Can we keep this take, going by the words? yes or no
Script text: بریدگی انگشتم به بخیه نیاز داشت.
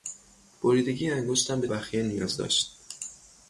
yes